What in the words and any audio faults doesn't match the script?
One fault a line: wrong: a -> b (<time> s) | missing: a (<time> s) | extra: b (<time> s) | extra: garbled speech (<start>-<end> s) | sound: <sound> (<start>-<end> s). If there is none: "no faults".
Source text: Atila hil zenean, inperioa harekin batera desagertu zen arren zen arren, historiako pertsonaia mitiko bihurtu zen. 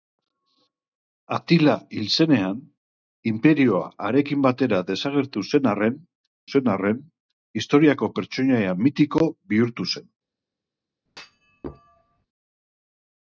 sound: thud (11.1-12.3 s)